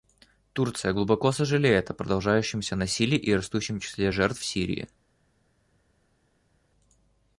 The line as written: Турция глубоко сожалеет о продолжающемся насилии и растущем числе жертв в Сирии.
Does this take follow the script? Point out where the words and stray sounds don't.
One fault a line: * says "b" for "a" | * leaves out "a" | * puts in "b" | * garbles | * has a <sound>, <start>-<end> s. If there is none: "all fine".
all fine